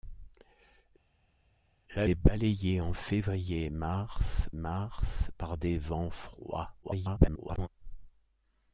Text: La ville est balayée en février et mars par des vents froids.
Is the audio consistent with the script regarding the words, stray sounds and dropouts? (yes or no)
no